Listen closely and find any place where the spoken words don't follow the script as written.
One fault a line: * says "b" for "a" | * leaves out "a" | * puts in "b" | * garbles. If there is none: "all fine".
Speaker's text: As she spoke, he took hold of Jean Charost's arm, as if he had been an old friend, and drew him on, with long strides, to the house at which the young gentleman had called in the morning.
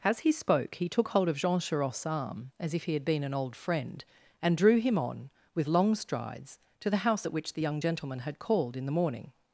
* says "he" for "she"